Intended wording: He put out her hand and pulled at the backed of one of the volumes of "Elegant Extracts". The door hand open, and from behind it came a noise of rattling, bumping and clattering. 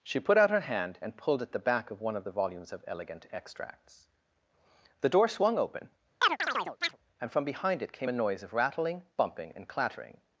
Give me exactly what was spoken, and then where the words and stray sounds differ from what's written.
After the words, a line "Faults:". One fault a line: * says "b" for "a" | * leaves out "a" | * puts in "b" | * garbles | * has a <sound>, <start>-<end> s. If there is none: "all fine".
She put out her hand and pulled at the back of one of the volumes of "Elegant Extracts". The door swung open, and from behind it came a noise of rattling, bumping and clattering.
Faults:
* says "She" for "He"
* says "back" for "backed"
* says "swung" for "hand"
* has a chirp, 6.2-7.0 s